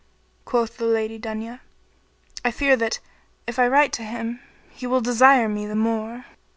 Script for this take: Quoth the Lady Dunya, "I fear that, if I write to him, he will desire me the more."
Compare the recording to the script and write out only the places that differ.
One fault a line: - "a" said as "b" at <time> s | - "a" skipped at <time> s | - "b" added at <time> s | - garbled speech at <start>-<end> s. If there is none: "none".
none